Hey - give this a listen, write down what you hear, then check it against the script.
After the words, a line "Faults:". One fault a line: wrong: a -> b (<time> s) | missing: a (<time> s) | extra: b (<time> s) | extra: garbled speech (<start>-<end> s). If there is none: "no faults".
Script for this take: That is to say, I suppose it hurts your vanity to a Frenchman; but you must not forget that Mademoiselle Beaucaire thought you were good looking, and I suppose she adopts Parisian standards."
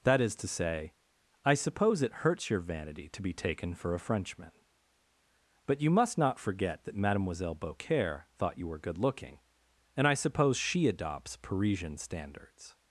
That is to say, I suppose it hurts your vanity to be taken for a Frenchman; but you must not forget that Mademoiselle Beaucaire thought you were good looking, and I suppose she adopts Parisian standards."
Faults:
extra: be taken for (3.2 s)